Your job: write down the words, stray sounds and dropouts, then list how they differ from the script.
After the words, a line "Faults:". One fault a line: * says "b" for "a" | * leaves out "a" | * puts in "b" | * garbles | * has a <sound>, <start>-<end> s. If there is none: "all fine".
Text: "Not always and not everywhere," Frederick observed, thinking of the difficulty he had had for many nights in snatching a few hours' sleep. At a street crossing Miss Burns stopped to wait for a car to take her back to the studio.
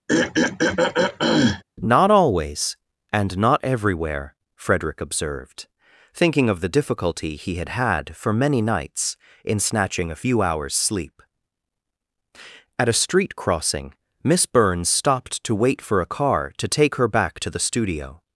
"Not always and not everywhere," Frederick observed, thinking of the difficulty he had had for many nights in snatching a few hours' sleep. At a street crossing Miss Burns stopped to wait for a car to take her back to the studio.
Faults:
* has a throat clearing, 0.1-1.6 s